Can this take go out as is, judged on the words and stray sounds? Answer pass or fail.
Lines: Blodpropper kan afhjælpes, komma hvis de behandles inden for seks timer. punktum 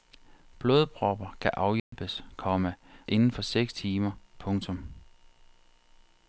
fail